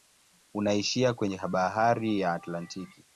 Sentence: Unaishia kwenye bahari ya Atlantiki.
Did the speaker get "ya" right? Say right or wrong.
right